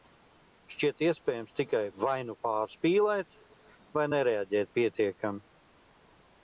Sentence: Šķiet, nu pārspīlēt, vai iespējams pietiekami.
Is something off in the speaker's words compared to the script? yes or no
yes